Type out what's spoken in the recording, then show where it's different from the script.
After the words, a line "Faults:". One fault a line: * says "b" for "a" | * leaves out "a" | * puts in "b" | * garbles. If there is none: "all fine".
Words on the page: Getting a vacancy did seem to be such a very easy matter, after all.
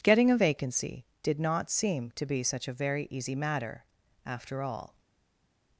Getting a vacancy did not seem to be such a very easy matter, after all.
Faults:
* puts in "not"